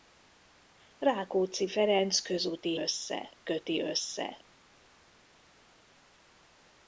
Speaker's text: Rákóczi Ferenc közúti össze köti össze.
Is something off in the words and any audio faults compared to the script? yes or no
no